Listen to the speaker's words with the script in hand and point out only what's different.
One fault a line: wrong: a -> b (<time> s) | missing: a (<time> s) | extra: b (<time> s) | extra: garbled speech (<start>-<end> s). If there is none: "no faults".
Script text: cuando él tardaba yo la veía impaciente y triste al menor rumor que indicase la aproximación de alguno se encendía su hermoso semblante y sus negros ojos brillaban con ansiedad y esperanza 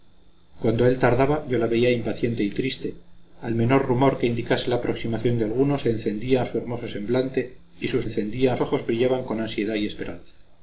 wrong: negros -> encendía (8.0 s)